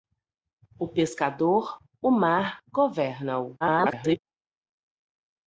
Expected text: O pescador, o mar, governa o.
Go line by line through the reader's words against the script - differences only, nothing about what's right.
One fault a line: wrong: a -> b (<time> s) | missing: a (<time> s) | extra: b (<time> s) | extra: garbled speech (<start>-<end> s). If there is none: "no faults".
extra: garbled speech (3.6-4.2 s)